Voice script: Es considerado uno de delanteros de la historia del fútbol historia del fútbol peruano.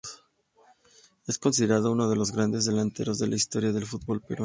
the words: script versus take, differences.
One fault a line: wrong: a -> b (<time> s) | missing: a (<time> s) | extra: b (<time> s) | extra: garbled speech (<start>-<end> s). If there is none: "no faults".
extra: los grandes (2.1 s)
missing: historia del fútbol (4.2 s)